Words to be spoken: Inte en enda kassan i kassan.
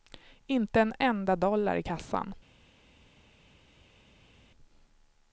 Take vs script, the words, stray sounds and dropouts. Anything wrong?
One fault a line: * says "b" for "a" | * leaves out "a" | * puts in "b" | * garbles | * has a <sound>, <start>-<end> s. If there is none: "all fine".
* says "dollar" for "kassan"